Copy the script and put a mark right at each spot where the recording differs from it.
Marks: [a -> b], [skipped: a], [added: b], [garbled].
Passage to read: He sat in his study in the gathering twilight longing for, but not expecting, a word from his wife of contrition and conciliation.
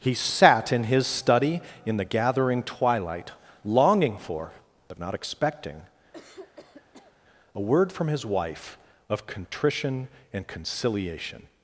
He sat in his study in the gathering twilight longing for, but not expecting, a word from his wife of contrition and conciliation.